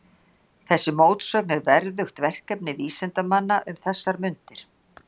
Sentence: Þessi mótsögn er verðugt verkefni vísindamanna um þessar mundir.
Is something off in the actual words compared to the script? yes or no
no